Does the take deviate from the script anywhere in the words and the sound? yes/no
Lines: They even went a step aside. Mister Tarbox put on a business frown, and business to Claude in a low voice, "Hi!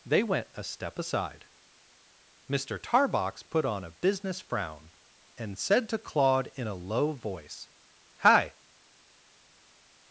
yes